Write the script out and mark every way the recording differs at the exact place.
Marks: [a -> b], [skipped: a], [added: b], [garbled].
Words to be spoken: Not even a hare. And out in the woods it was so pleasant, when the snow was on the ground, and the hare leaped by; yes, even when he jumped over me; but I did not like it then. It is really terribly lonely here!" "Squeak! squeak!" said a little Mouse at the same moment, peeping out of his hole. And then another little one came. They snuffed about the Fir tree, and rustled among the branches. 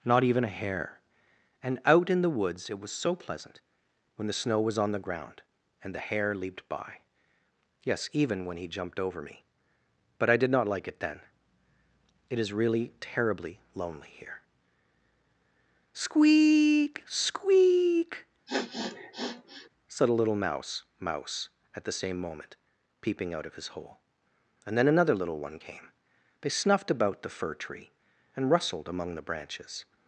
Not even a hare. And out in the woods it was so pleasant, when the snow was on the ground, and the hare leaped by; yes, even when he jumped over me; but I did not like it then. It is really terribly lonely here!" "Squeak! squeak!" said a little Mouse [added: mouse] at the same moment, peeping out of his hole. And then another little one came. They snuffed about the Fir tree, and rustled among the branches.